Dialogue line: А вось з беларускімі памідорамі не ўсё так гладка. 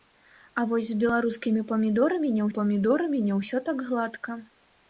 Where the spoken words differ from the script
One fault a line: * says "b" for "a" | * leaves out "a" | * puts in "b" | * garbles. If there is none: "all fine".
* puts in "памідорамі не"